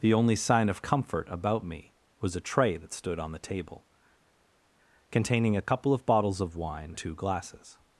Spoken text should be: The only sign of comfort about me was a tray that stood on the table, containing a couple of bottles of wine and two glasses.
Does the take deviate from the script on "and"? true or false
true